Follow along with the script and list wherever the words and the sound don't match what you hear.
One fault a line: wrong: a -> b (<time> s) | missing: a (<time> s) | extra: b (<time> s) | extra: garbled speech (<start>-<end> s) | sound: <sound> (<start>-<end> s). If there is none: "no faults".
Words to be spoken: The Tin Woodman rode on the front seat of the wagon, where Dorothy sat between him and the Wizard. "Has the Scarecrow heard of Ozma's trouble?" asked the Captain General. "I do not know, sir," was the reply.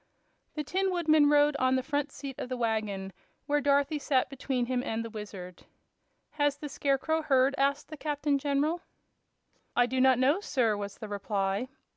missing: of Ozma's trouble (7.5 s)